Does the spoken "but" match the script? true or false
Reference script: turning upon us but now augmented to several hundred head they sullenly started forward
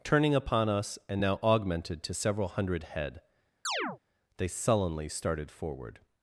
false